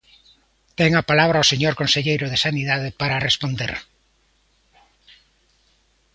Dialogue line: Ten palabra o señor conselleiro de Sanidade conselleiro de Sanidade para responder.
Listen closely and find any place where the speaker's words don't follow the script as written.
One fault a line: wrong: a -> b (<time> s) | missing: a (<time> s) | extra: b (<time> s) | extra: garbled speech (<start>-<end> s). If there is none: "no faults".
extra: a (0.9 s)
missing: conselleiro de Sanidade (2.9 s)